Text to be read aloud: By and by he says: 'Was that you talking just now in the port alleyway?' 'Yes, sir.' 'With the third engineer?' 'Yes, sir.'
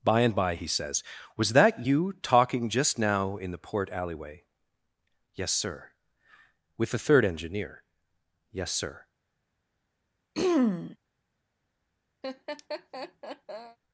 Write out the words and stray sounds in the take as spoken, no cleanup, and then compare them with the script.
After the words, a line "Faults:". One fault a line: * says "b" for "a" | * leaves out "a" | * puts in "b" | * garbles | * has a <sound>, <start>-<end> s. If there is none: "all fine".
By and by he says: 'Was that you talking just now in the port alleyway?' 'Yes, sir.' 'With the third engineer?' 'Yes, sir.'
Faults:
* has a throat clearing, 10.3-11.0 s
* has a laugh, 12.2-13.8 s